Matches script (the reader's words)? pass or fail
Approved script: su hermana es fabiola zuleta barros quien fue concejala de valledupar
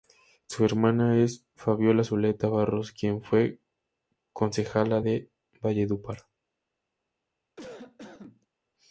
pass